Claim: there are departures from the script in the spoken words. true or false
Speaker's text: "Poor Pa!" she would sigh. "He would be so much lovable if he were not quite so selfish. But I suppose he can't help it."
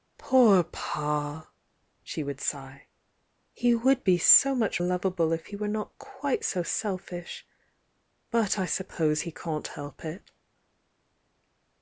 false